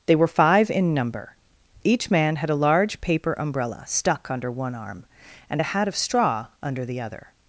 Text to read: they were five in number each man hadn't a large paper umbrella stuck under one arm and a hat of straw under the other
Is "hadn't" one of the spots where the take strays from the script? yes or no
yes